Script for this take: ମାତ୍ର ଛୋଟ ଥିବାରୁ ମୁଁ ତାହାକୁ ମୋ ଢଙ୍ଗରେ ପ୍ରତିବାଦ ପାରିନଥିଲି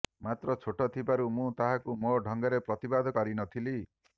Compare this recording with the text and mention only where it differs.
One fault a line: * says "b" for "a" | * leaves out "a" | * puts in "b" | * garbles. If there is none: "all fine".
all fine